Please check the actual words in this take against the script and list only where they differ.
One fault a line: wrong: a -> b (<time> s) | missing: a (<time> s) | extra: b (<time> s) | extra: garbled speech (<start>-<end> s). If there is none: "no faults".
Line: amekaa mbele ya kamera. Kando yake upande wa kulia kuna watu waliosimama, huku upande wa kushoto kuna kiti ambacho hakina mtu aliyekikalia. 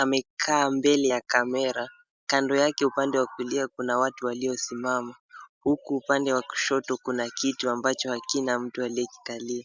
no faults